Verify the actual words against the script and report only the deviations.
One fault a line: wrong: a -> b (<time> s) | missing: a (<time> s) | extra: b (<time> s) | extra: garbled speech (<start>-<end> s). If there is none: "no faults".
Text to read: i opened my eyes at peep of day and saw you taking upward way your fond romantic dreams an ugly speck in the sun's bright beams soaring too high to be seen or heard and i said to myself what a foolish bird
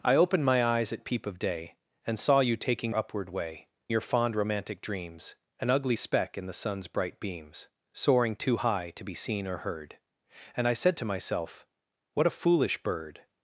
no faults